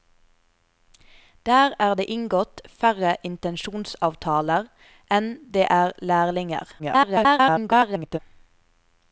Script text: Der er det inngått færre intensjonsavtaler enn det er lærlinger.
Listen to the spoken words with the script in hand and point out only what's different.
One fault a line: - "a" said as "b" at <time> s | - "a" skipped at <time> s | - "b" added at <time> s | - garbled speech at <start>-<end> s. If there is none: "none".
- garbled speech at 6.8-8.2 s